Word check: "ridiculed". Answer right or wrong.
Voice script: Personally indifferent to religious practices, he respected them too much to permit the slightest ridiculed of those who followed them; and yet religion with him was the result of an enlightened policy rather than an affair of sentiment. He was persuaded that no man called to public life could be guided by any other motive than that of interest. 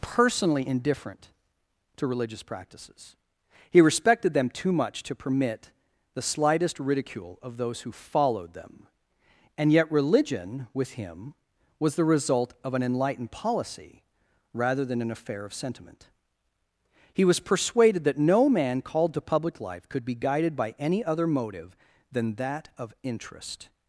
wrong